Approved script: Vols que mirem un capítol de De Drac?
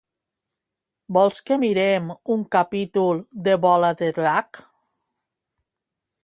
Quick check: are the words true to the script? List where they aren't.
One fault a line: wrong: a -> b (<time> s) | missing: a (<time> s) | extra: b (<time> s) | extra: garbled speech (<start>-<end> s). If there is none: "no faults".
extra: Bola (3.7 s)